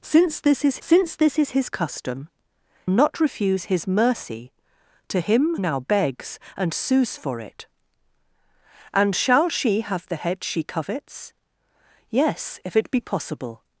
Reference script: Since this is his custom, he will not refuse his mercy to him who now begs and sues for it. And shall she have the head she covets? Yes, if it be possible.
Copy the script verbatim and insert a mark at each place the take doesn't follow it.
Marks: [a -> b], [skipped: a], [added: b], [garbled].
Since this is [added: since this is] his custom, [skipped: he will] not refuse his mercy to him [skipped: who] now begs and sues for it. And shall she have the head she covets? Yes, if it be possible.